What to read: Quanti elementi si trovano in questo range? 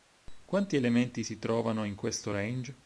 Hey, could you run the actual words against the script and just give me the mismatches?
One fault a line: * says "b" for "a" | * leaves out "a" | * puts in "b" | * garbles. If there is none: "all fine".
all fine